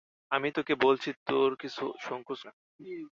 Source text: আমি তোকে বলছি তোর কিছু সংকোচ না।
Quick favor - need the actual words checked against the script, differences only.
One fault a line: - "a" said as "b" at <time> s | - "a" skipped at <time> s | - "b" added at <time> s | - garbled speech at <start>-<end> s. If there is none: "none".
none